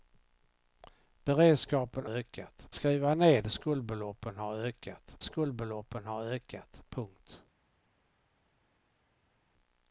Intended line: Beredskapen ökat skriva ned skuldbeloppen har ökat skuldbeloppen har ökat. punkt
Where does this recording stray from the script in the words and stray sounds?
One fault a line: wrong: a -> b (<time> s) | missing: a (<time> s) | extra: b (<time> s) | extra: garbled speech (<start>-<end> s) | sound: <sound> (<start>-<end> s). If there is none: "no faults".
no faults